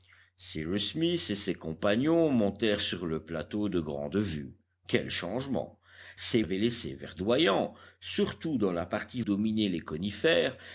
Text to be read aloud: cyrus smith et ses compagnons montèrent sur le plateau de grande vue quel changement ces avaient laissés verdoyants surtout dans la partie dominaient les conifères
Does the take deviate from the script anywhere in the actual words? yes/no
no